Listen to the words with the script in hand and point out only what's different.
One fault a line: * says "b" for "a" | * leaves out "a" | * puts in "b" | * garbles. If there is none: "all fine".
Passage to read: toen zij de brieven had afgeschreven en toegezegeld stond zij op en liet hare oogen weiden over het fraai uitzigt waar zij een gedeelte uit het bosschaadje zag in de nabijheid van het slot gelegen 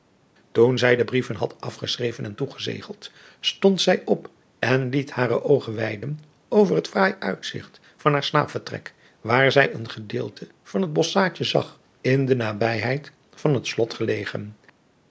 * puts in "van haar slaapvertrek"
* says "van" for "uit"